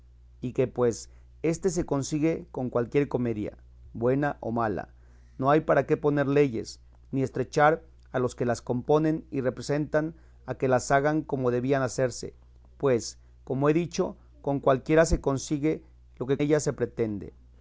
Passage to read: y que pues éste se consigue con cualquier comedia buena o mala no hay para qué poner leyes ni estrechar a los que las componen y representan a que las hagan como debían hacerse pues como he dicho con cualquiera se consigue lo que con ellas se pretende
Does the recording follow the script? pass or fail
fail